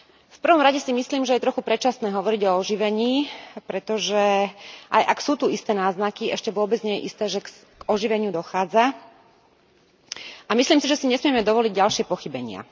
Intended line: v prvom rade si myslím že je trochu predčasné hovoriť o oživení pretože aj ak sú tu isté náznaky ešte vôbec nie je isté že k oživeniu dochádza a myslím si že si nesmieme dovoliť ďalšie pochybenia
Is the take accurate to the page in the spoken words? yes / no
yes